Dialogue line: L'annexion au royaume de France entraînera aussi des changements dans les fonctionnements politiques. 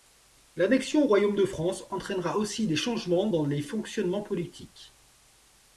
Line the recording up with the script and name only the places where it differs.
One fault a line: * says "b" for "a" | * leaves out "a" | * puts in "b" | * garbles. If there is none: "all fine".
all fine